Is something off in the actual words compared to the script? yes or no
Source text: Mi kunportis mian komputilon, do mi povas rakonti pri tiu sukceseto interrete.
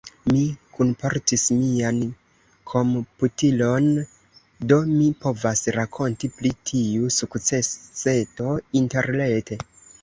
no